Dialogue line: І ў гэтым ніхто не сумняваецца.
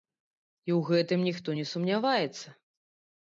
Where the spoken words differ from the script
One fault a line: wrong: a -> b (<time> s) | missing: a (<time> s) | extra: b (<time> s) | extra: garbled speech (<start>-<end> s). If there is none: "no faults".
no faults